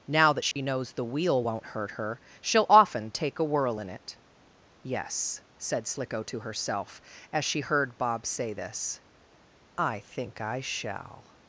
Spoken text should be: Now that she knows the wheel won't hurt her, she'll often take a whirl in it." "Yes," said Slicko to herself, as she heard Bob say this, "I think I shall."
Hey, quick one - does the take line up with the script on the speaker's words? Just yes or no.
yes